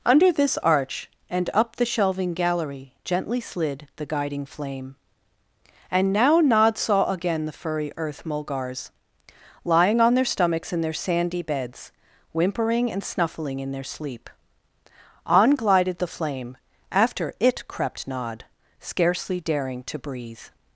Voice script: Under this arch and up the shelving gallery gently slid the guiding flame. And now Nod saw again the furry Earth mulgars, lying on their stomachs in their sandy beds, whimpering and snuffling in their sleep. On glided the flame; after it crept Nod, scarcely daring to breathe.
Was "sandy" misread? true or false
false